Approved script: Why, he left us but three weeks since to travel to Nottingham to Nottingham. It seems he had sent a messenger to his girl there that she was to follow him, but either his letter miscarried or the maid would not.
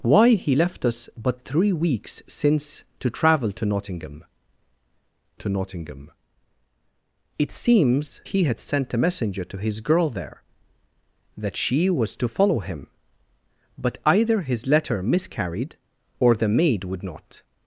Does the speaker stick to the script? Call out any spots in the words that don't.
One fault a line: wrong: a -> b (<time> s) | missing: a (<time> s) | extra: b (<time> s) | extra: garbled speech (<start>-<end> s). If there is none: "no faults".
no faults